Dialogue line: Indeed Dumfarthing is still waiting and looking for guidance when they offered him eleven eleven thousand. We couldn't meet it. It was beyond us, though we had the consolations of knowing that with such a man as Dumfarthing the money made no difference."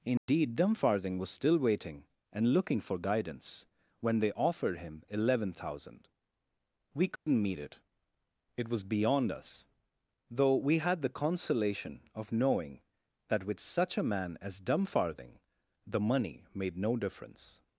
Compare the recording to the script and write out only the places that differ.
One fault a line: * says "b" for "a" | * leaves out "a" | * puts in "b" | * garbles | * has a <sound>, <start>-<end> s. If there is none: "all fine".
* has a dropout, 0.2-0.3 s
* says "was" for "is"
* leaves out "eleven"
* has a dropout, 7.2-7.3 s
* says "consolation" for "consolations"